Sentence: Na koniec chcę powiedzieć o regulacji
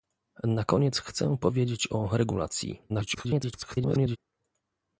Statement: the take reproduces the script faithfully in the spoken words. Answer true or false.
false